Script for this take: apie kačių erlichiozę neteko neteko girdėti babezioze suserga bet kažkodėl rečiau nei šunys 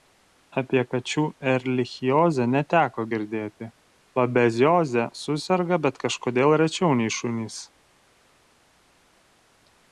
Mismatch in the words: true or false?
true